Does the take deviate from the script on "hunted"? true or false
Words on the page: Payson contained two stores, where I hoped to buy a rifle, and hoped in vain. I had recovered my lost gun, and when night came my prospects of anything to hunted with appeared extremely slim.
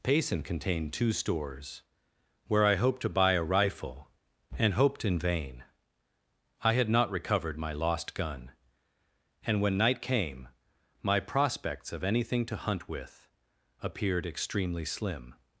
true